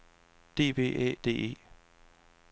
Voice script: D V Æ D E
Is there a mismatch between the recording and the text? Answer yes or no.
no